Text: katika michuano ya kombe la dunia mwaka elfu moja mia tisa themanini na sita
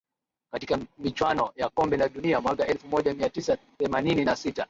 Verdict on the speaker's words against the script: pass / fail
pass